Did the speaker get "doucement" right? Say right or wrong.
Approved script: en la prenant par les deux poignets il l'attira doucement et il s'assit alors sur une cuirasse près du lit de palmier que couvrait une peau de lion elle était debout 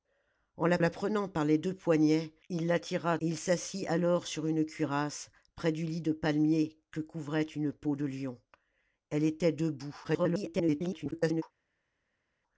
wrong